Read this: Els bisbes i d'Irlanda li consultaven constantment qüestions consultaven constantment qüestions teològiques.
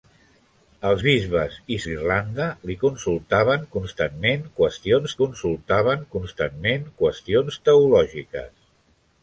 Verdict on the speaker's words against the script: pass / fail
pass